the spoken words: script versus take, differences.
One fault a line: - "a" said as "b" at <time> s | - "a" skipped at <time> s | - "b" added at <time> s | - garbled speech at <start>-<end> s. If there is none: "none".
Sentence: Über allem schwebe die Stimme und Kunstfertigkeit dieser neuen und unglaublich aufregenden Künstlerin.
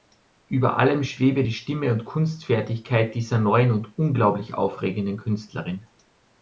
none